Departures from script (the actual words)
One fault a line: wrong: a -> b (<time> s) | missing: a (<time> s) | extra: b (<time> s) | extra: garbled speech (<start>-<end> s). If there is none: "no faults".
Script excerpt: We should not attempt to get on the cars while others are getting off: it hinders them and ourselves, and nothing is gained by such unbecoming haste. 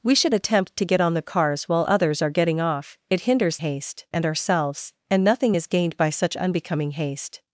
missing: not (0.3 s)
wrong: them -> haste (3.6 s)